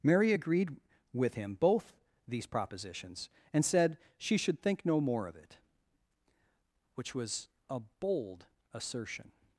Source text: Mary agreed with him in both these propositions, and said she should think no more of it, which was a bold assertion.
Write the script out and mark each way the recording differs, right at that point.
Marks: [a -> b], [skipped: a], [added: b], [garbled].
Mary agreed with him [skipped: in] both these propositions, and said she should think no more of it, which was a bold assertion.